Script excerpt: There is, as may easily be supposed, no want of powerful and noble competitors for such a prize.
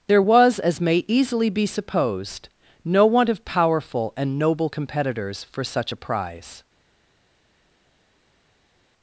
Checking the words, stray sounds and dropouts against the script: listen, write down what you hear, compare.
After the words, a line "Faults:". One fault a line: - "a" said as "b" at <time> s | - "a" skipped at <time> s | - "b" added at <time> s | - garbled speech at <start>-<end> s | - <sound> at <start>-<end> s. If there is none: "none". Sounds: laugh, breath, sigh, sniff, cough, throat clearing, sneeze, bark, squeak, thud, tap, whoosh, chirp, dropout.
There was, as may easily be supposed, no want of powerful and noble competitors for such a prize.
Faults:
- "is" said as "was" at 0.2 s